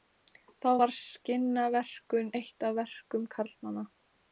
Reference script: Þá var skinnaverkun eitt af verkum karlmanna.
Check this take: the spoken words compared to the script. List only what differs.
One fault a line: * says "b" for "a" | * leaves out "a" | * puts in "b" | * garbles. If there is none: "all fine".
all fine